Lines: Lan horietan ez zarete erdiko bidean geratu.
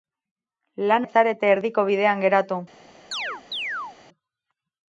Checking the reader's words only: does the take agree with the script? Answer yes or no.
no